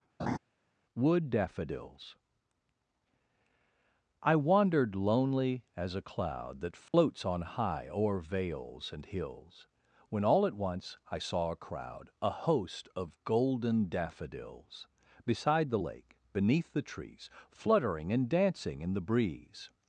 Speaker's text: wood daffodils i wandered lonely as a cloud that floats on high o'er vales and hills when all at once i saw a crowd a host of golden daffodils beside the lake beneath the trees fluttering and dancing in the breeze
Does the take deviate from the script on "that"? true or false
false